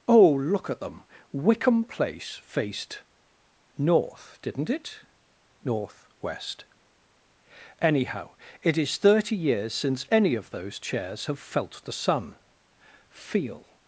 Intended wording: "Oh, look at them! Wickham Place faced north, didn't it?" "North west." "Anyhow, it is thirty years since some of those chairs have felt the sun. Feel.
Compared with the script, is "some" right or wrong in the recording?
wrong